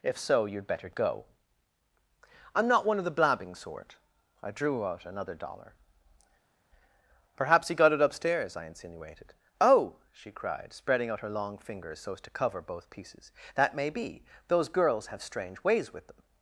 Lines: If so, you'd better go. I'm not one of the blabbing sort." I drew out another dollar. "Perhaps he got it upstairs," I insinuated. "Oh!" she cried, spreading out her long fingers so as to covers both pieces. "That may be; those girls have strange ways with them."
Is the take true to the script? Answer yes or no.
no